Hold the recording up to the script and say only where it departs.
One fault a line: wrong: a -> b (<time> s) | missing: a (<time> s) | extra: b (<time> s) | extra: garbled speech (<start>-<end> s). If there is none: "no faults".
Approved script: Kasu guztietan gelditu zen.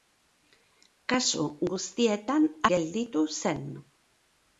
no faults